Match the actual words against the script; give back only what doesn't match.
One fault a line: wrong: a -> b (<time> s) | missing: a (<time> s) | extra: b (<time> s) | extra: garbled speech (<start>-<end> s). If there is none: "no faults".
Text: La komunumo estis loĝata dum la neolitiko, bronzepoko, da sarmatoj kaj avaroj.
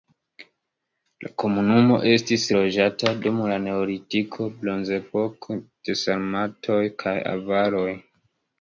wrong: da -> de (5.9 s)